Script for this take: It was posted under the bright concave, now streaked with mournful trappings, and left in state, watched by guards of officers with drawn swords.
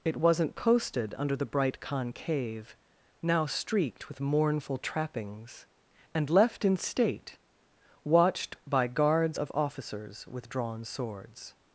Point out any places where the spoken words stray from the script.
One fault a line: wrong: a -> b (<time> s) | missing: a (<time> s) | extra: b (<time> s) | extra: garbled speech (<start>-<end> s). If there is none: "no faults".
wrong: was -> wasn't (0.2 s)